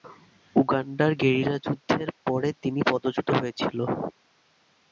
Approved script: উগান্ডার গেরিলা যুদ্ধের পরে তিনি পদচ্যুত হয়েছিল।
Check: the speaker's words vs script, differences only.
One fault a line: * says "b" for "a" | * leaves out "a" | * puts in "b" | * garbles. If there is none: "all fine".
all fine